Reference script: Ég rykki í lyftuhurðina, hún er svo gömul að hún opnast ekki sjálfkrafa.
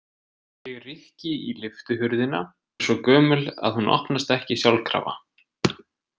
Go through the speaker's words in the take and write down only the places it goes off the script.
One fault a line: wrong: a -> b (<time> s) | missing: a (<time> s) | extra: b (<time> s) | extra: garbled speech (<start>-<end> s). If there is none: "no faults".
missing: hún (2.4 s)